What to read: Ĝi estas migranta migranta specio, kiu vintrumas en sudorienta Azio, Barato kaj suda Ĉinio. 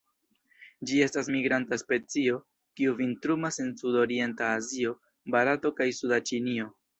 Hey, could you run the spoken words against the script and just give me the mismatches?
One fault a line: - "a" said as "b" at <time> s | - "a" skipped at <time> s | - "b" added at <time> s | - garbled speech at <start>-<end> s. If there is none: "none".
- "migranta" skipped at 1.8 s